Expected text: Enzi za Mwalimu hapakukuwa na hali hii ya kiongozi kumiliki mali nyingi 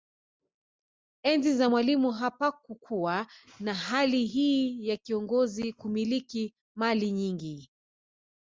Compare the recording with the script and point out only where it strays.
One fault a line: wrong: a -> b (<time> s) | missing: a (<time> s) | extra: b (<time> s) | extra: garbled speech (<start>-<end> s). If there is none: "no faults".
no faults